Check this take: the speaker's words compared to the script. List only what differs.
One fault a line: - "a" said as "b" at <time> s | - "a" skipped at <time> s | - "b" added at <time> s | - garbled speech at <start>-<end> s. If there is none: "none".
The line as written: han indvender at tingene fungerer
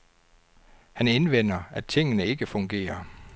- "ikke" added at 2.2 s